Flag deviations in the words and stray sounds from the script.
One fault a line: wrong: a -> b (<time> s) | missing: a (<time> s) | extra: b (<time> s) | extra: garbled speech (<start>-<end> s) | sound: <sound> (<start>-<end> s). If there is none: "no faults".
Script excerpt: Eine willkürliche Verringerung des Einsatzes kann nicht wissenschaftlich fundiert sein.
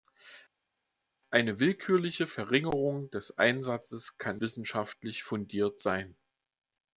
missing: nicht (4.4 s)